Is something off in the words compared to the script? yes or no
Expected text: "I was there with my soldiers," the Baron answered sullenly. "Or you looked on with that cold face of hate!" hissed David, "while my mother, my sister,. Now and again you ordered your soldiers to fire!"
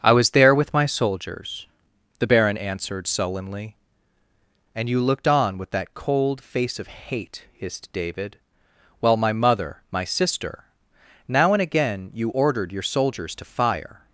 yes